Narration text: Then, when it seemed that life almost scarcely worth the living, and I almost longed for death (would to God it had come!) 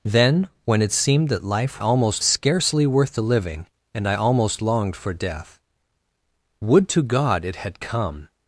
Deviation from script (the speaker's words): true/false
false